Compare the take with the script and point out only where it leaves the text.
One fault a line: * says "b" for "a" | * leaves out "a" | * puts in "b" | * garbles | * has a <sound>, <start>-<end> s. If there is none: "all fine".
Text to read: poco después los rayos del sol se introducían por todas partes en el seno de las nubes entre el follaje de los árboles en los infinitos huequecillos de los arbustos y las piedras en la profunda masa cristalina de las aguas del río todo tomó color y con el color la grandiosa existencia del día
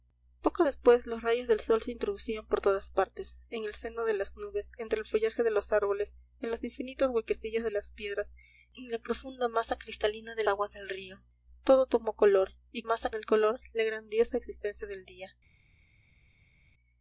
* leaves out "los arbustos y"
* leaves out "las"
* says "masa" for "con"